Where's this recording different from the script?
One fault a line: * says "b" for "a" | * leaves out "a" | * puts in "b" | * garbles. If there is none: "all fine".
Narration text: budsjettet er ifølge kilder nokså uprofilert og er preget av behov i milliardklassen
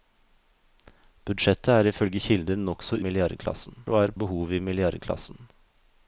* says "milliardklassen" for "uprofilert"
* leaves out "preget"